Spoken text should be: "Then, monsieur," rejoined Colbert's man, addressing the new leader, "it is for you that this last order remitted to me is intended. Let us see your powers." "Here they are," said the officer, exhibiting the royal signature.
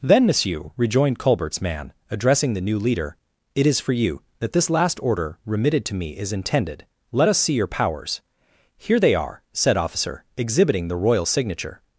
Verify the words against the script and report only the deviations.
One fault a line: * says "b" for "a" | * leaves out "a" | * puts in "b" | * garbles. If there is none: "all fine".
* leaves out "the"